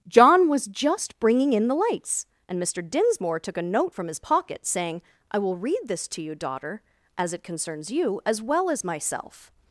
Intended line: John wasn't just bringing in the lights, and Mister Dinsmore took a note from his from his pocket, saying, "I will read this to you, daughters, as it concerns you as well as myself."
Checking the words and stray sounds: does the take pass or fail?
fail